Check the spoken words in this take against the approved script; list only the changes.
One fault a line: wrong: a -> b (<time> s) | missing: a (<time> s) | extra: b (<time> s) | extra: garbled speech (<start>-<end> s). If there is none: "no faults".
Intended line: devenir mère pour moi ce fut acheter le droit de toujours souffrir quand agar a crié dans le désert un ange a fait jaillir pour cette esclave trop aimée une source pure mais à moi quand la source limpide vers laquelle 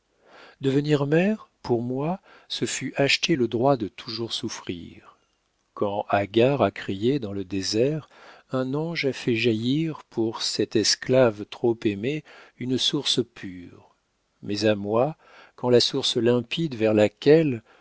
no faults